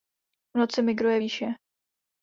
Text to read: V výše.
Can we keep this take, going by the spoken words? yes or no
no